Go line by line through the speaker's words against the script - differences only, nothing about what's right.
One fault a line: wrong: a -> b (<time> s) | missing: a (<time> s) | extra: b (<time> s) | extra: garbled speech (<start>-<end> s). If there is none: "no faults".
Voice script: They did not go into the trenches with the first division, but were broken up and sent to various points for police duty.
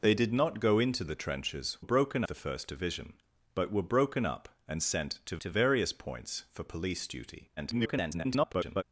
wrong: with -> broken (1.8 s)
extra: to (5.4 s)
extra: garbled speech (7.6-8.8 s)